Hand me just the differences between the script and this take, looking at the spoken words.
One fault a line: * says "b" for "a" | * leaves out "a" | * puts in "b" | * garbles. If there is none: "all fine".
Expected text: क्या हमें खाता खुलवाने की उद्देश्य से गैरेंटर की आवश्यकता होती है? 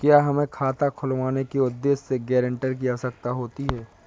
* says "के" for "की"